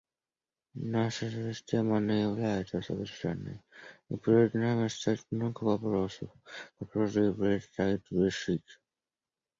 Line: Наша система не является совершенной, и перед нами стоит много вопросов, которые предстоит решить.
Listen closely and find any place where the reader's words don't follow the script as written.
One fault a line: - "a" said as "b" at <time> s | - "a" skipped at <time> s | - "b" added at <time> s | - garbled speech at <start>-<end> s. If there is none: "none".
none